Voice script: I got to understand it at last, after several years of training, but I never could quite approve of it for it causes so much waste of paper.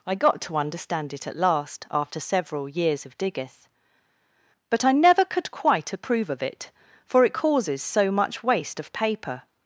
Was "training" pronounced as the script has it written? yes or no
no